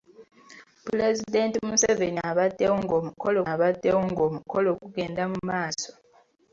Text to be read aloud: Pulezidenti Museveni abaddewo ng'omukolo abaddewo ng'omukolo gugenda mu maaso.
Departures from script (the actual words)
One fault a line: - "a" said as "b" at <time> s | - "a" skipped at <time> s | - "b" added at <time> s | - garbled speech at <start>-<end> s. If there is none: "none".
none